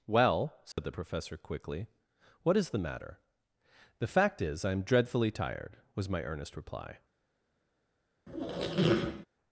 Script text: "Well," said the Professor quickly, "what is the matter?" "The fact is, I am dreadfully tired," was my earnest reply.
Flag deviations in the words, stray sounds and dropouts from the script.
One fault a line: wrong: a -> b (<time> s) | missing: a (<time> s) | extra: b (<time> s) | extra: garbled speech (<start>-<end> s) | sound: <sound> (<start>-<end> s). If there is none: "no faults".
sound: dropout (0.7-0.8 s)
sound: squeak (8.3-9.3 s)